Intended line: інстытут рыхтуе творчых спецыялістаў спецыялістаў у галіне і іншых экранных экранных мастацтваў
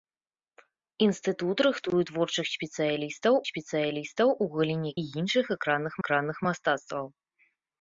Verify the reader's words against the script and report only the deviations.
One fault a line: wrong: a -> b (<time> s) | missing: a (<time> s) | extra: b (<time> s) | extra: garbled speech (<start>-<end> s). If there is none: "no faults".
no faults